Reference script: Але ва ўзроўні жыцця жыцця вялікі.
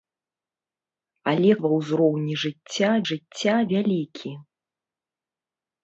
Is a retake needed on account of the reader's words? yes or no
no